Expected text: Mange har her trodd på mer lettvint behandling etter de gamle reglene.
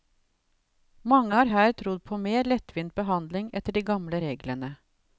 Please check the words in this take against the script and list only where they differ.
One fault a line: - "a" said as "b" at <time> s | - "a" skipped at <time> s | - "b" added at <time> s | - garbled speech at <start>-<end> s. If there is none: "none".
none